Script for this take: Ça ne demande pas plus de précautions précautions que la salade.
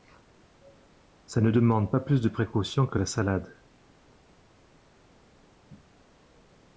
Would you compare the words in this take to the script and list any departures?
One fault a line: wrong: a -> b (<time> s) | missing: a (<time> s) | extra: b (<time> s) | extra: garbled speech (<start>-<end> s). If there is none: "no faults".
missing: précautions (2.9 s)